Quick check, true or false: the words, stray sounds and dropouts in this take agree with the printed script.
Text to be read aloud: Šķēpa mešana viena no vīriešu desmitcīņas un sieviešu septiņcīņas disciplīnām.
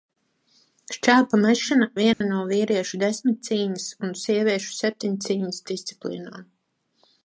false